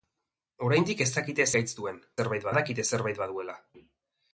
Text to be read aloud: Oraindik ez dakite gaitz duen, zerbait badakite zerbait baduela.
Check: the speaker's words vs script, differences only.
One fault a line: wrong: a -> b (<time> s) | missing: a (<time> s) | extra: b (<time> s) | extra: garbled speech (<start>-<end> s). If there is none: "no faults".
no faults